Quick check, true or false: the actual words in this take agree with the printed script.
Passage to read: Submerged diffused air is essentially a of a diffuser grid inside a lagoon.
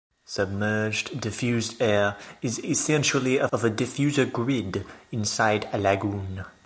true